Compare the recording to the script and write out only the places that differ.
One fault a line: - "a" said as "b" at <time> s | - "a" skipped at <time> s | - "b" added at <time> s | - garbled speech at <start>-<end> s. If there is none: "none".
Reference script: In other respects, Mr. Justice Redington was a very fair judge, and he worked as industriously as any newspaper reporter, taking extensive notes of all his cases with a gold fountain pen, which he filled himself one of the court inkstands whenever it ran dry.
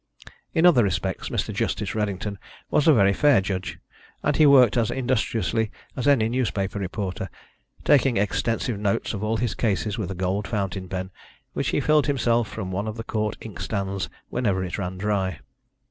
- "from" added at 12.5 s